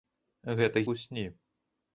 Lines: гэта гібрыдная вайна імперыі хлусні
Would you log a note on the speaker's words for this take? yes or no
yes